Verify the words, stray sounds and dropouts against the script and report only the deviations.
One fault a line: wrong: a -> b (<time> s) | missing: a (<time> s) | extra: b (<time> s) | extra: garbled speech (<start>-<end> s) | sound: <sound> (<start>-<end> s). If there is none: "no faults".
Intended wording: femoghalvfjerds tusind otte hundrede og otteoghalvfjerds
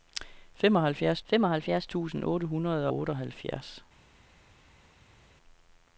extra: femoghalvfjerds (1.2 s)
missing: og (2.9 s)